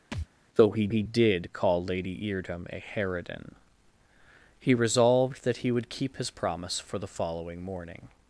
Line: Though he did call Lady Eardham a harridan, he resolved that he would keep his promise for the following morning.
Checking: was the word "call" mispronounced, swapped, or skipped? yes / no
no